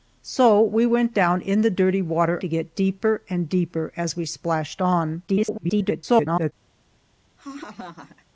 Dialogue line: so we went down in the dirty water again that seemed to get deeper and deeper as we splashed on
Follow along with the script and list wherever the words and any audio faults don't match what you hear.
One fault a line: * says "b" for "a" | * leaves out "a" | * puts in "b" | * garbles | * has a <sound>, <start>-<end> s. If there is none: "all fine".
* leaves out "again that seemed"
* garbles
* has a laugh, 7.4-8.3 s